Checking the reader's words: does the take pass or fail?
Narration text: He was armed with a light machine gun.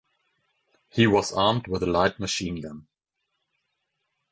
pass